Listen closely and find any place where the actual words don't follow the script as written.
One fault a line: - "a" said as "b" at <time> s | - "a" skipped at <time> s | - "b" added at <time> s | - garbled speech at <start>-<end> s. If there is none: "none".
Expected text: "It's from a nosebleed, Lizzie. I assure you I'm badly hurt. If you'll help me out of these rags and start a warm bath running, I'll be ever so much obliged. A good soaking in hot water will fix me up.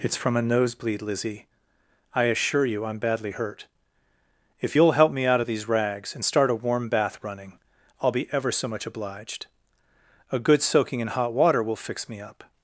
none